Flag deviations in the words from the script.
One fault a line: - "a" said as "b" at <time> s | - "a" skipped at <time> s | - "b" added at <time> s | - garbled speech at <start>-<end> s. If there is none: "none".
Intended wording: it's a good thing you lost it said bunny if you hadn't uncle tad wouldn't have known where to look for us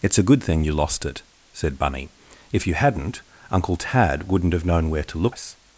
- "for" skipped at 5.4 s